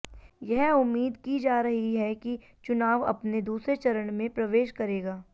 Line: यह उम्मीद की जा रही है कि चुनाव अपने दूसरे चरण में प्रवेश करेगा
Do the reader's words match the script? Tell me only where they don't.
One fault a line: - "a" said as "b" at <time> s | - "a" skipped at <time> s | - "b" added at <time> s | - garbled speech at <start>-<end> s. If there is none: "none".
none